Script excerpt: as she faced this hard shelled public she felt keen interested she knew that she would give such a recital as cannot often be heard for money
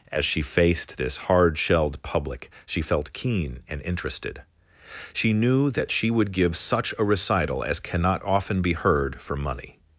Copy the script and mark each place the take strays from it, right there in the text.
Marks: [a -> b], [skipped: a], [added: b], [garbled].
as she faced this hard shelled public she felt keen [added: and] interested she knew that she would give such a recital as cannot often be heard for money